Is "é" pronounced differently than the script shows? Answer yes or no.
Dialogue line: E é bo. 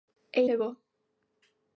no